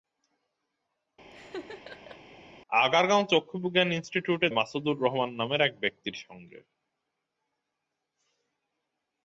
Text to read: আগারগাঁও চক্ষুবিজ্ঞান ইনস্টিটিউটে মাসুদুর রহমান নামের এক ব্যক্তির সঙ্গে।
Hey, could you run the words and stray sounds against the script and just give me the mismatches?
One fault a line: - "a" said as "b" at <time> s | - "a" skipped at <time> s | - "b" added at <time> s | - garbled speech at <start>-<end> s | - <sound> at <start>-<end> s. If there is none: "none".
- laugh at 1.3-2.2 s